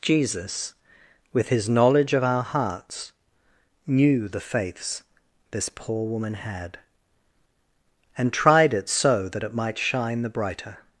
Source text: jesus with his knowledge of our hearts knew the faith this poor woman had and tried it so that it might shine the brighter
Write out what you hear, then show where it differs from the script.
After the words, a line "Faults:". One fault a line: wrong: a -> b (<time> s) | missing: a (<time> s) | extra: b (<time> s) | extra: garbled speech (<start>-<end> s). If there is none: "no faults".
jesus with his knowledge of our hearts knew the faiths this poor woman had and tried it so that it might shine the brighter
Faults:
wrong: faith -> faiths (4.4 s)